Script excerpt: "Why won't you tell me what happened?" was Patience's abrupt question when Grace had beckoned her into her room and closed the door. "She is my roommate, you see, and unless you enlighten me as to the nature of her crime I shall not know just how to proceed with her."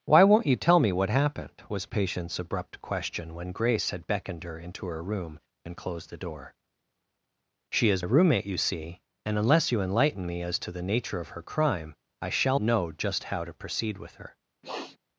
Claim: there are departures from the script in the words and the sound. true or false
true